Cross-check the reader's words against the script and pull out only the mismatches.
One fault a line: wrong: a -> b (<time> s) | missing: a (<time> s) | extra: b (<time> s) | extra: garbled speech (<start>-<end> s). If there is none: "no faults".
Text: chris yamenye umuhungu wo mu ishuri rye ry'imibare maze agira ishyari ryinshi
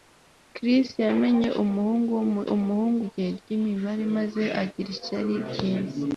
wrong: ishuri -> umuhungu (2.5 s)